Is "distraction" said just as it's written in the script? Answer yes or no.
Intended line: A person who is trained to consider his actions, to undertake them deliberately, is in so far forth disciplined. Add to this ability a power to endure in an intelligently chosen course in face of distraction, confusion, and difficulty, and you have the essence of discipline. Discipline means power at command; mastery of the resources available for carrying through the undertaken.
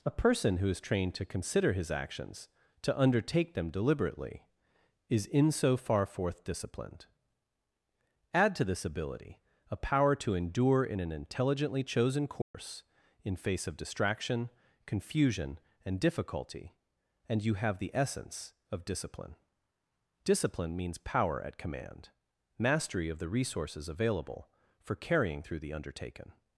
yes